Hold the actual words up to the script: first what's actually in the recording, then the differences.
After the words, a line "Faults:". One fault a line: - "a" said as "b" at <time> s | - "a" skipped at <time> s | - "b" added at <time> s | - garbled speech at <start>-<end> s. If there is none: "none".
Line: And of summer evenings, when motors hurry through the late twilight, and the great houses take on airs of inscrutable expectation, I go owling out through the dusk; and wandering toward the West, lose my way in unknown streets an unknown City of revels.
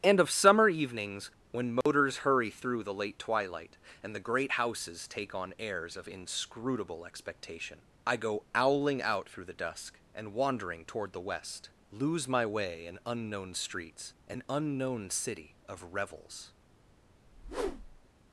And of summer evenings, when motors hurry through the late twilight, and the great houses take on airs of inscrutable expectation, I go owling out through the dusk; and wandering toward the West, lose my way in unknown streets an unknown City of revels.
Faults:
none